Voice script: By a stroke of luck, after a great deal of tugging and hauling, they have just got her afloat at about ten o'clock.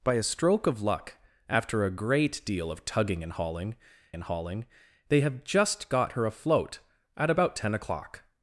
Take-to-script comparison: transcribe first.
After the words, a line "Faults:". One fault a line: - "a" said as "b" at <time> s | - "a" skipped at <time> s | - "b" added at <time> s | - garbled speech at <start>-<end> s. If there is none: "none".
By a stroke of luck, after a great deal of tugging and hauling and hauling, they have just got her afloat at about ten o'clock.
Faults:
- "and hauling" added at 4.1 s